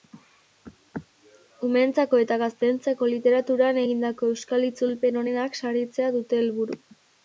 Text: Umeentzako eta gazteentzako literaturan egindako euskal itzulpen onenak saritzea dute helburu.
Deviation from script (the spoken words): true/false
false